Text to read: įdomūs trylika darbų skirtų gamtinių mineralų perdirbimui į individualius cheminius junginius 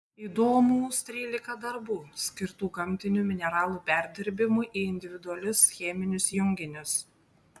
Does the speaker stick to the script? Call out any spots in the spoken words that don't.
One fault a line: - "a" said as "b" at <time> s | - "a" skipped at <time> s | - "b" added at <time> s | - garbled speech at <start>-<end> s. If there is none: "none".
none